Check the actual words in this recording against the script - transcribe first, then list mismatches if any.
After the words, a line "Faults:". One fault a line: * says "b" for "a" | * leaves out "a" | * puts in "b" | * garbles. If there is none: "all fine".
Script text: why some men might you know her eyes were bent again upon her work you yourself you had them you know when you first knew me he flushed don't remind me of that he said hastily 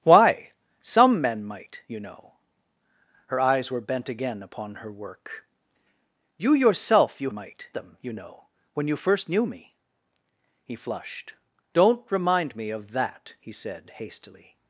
why some men might you know her eyes were bent again upon her work you yourself you might them you know when you first knew me he flushed don't remind me of that he said hastily
Faults:
* says "might" for "had"